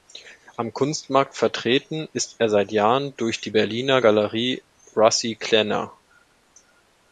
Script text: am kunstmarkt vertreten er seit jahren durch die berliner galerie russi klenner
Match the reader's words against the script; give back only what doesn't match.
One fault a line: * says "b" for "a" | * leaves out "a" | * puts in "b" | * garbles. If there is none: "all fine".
* puts in "ist"